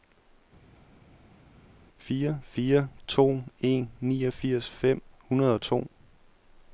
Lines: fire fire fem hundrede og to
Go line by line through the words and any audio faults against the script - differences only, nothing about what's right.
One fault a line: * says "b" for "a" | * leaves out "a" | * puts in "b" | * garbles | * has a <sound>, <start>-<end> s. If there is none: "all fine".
* puts in "to en niogfirs"